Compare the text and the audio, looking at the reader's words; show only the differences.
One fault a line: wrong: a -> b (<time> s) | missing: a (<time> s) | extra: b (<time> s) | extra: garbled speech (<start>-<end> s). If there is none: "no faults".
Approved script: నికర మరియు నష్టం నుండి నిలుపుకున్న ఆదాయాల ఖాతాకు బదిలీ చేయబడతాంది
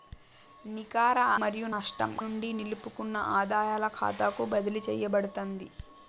no faults